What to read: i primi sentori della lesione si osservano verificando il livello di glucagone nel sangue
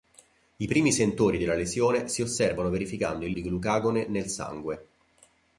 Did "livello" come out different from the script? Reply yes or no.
yes